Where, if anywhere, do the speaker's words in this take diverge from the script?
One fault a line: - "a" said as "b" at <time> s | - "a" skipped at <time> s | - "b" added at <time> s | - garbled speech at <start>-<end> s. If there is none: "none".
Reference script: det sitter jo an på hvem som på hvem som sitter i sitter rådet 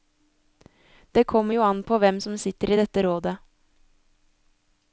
- "sitter" said as "kommer" at 1.2 s
- "på hvem som" skipped at 2.4 s
- "sitter" said as "dette" at 2.8 s